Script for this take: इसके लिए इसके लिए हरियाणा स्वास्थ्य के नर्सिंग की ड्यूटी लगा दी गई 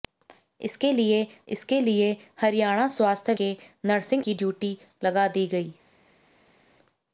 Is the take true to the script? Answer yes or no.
yes